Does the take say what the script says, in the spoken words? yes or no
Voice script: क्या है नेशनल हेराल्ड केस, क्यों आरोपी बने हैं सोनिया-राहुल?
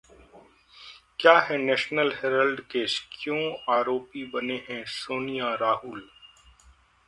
yes